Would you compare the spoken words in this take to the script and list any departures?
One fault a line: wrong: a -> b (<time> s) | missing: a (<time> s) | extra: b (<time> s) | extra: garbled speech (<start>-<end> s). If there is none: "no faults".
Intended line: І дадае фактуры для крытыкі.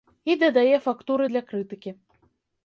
no faults